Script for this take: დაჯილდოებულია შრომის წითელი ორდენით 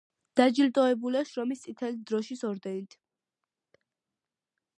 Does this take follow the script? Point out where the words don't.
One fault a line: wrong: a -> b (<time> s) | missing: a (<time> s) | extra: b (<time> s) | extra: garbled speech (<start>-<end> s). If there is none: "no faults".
extra: დროშის (2.1 s)